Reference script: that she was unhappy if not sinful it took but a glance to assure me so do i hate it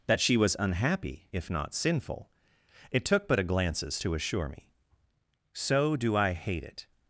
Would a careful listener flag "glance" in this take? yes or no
yes